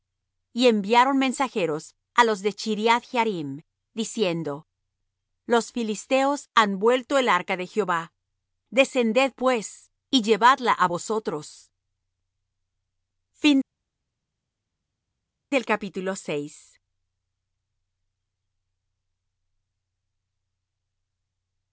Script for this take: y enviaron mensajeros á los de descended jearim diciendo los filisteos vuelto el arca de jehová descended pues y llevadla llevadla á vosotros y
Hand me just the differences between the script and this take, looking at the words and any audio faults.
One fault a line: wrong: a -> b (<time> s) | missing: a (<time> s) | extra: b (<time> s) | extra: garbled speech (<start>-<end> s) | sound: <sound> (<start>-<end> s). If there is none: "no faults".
wrong: descended -> chriath (2.6 s)
extra: han (6.5 s)
missing: llevadla (10.7 s)